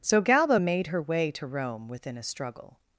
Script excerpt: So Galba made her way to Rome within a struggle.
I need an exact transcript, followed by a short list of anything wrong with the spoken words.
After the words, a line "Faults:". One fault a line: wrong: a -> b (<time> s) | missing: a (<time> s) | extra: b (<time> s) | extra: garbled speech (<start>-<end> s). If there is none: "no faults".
So Galba made her way to Rome within a struggle.
Faults:
no faults